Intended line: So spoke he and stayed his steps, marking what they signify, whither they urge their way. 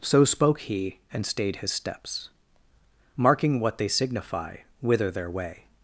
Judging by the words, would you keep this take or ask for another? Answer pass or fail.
fail